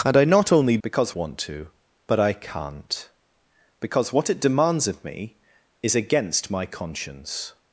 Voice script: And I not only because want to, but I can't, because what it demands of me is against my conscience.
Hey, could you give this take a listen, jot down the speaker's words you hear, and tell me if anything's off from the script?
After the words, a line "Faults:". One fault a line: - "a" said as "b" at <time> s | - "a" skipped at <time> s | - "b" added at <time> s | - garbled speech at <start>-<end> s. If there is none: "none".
And I not only because want to, but I can't, because what it demands of me is against my conscience.
Faults:
none